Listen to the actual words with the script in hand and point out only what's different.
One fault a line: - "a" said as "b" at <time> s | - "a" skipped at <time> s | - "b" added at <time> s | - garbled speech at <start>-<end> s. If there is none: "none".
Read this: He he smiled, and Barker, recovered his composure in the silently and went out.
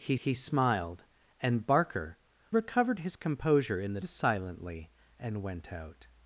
none